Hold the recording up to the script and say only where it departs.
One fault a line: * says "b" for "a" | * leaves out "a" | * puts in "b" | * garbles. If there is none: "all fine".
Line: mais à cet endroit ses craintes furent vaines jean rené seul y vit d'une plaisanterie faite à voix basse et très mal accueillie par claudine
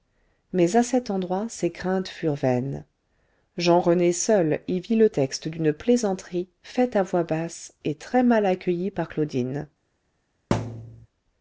* puts in "le texte"